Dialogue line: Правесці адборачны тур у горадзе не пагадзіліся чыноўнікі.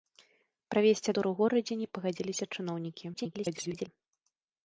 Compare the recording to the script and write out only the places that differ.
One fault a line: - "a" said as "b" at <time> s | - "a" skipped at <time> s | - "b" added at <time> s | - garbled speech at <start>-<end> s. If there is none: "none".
- "адборачны" skipped at 1.1 s
- garbled speech at 3.1-3.9 s